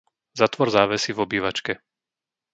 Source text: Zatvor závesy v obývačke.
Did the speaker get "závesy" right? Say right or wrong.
right